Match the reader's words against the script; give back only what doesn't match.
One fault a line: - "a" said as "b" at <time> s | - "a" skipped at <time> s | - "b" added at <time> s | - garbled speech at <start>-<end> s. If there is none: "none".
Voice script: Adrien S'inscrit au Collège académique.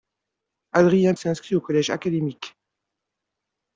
none